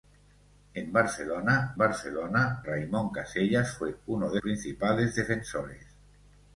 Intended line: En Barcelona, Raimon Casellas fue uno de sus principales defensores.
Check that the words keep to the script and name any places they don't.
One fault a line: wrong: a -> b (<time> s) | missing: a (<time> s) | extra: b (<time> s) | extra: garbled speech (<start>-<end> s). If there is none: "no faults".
extra: Barcelona (1.8 s)
missing: sus (4.4 s)